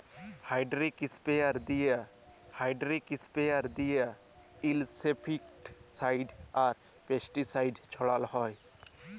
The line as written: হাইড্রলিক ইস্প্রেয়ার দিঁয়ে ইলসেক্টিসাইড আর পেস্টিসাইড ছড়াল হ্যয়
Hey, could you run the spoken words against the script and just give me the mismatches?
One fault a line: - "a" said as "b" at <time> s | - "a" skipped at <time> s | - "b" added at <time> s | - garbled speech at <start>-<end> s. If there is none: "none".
- "হাইড্রলিক ইস্প্রেয়ার দিঁয়ে" added at 2.6 s